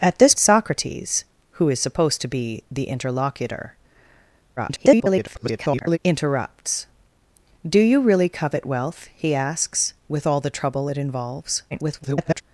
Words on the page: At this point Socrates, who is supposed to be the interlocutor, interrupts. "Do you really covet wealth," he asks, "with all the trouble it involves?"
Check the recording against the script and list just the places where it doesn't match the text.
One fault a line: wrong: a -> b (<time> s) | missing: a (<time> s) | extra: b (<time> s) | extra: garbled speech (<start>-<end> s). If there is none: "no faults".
missing: point (0.3 s)
extra: garbled speech (4.6-6.0 s)
extra: garbled speech (11.7-12.4 s)